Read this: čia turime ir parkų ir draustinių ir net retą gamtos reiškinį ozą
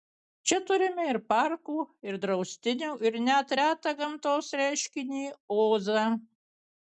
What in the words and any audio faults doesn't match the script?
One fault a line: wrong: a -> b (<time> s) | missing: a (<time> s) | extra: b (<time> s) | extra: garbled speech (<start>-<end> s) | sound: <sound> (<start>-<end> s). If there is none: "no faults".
no faults